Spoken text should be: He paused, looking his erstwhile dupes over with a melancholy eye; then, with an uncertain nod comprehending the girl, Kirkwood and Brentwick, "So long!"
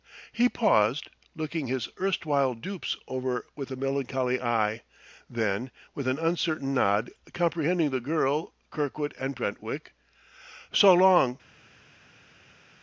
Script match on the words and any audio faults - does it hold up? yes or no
yes